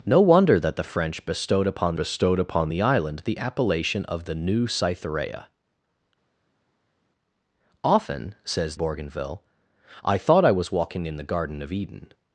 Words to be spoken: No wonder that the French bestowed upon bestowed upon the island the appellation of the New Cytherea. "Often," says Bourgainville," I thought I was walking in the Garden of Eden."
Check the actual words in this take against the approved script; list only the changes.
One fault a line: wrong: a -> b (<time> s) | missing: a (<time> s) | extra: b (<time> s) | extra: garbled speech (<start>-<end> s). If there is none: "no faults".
no faults